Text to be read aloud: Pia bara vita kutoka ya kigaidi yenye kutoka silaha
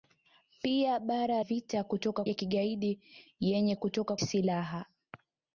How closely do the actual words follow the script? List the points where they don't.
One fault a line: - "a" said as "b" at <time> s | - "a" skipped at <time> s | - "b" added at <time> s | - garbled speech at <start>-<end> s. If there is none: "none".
none